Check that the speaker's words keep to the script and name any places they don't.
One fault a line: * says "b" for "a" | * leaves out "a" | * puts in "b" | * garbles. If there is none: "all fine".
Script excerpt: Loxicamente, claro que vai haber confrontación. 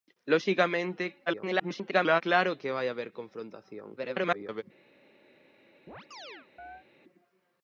* garbles
* garbles